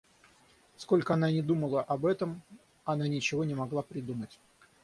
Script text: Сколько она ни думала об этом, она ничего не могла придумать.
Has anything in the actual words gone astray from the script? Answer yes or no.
no